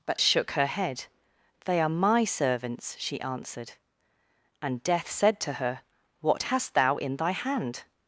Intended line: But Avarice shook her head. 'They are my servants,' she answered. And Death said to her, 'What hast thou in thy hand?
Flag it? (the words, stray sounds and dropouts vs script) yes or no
yes